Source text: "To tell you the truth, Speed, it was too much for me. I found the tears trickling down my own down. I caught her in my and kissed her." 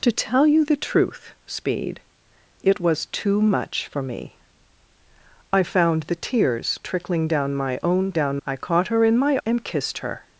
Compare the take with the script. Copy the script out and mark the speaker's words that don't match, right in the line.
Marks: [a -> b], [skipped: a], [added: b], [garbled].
"To tell you the truth, Speed, it was too much for me. I found the tears trickling down my own down. I caught her in my and kissed her."